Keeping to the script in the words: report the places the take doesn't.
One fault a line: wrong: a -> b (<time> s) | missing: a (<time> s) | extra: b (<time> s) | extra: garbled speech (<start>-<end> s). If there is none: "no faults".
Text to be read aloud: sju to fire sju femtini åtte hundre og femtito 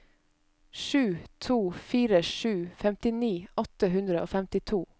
no faults